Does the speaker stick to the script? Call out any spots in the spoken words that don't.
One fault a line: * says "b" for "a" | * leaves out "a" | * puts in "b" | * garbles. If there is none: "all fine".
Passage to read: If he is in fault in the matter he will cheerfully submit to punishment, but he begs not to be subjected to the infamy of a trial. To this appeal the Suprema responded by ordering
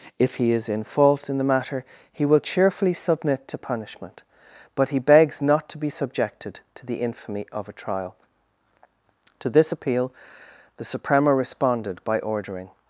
all fine